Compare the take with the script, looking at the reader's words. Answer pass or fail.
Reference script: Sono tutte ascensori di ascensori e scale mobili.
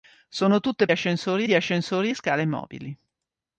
pass